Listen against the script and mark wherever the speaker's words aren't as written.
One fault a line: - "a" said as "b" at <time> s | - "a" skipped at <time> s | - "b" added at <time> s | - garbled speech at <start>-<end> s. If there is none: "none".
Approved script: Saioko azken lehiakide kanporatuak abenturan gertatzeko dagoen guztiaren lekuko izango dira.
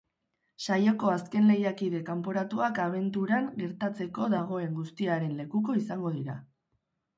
none